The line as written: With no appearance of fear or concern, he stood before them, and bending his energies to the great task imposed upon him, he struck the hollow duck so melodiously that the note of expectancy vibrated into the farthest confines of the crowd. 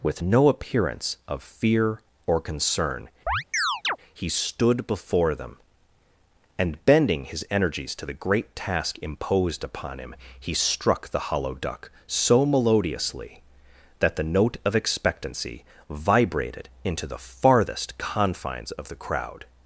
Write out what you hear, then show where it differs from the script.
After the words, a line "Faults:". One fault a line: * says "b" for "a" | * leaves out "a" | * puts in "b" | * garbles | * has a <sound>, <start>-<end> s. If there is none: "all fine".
With no appearance of fear or concern, he stood before them, and bending his energies to the great task imposed upon him, he struck the hollow duck so melodiously that the note of expectancy vibrated into the farthest confines of the crowd.
Faults:
* has a chirp, 3.3-4.0 s